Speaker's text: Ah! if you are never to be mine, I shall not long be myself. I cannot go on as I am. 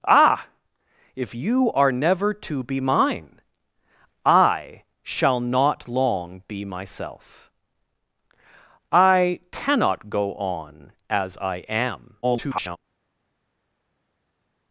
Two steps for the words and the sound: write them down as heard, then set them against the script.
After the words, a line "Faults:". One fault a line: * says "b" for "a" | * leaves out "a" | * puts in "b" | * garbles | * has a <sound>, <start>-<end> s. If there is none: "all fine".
Ah! if you are never to be mine, I shall not long be myself. I cannot go on as I am. [garbled]
Faults:
* garbles